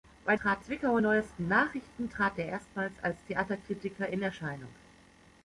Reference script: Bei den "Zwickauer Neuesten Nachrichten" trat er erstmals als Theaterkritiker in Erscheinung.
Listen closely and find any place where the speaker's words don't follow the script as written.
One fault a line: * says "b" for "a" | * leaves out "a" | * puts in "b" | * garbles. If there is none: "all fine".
* says "trat" for "den"